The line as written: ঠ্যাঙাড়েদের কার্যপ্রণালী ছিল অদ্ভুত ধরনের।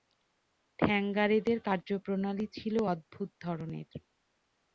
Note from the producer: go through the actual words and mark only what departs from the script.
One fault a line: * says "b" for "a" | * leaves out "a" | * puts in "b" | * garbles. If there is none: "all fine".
all fine